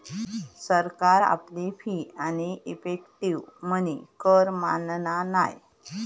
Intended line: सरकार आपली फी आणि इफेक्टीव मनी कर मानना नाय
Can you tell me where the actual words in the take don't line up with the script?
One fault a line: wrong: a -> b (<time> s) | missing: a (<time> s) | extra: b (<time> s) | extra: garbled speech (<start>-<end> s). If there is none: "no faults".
no faults